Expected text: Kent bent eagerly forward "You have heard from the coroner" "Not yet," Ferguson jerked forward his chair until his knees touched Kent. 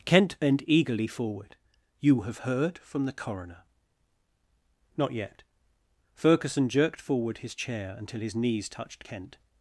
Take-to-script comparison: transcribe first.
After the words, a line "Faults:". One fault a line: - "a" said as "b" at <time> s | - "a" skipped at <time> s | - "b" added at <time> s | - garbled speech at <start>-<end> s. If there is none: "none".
Kent bent eagerly forward "You have heard from the coroner" "Not yet," Ferguson jerked forward his chair until his knees touched Kent.
Faults:
none